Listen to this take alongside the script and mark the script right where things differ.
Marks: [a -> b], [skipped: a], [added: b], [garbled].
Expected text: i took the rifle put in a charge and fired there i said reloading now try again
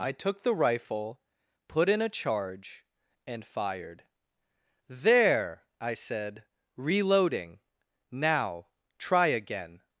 i took the rifle put in a charge and fired there i said reloading now try again